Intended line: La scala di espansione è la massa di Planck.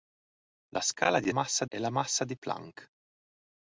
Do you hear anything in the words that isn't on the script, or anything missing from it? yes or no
yes